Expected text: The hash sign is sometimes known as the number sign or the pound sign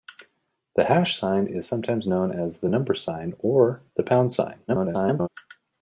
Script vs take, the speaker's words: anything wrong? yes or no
yes